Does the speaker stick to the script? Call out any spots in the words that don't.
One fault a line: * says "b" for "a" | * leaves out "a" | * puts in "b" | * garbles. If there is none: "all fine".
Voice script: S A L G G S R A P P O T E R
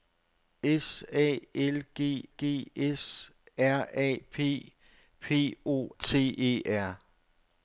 all fine